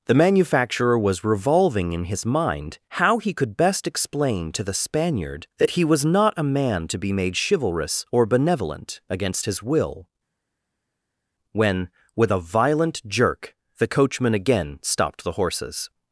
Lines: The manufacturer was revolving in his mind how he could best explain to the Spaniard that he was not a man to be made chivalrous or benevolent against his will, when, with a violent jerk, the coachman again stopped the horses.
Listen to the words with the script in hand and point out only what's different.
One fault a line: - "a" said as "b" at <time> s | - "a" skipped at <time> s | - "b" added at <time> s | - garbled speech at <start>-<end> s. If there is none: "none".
none